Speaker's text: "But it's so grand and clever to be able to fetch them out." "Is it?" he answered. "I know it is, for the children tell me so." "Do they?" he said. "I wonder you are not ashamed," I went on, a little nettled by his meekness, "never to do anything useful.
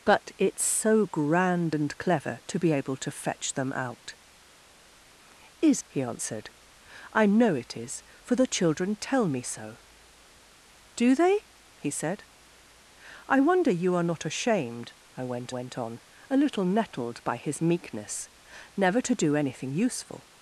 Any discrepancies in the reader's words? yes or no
yes